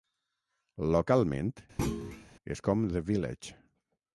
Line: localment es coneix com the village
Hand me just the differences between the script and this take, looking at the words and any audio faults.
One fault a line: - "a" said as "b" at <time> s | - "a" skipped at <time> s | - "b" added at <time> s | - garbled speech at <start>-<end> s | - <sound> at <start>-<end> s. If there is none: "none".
- thud at 1.8-2.3 s
- "coneix" skipped at 2.6 s